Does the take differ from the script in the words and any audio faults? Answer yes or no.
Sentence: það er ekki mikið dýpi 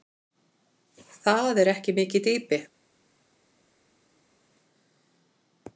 no